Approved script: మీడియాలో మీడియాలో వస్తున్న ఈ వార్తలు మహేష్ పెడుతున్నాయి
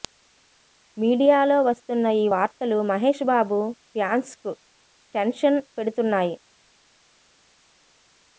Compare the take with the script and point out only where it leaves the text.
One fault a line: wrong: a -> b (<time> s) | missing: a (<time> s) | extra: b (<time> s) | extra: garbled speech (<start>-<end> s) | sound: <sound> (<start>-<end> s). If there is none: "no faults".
missing: మీడియాలో (1.6 s)
extra: బాబు ఫ్యాన్స్కు టెన్షన్ (3.3 s)